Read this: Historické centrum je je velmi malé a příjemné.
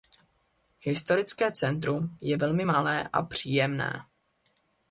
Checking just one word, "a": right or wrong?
right